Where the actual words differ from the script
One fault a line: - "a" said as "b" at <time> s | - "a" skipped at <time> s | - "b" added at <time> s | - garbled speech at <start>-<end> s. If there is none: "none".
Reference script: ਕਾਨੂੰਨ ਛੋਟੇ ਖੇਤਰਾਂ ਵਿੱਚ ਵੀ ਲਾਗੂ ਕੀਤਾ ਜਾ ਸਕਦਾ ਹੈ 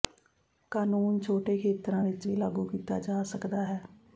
none